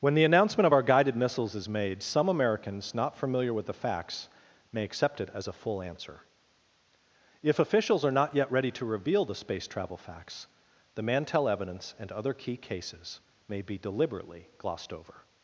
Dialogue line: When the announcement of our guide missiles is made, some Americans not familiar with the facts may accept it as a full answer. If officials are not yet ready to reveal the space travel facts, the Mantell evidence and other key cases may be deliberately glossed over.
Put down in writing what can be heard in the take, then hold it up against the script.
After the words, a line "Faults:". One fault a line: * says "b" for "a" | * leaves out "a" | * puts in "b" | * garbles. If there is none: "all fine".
When the announcement of our guided missiles is made, some Americans not familiar with the facts may accept it as a full answer. If officials are not yet ready to reveal the space travel facts, the Mantell evidence and other key cases may be deliberately glossed over.
Faults:
* says "guided" for "guide"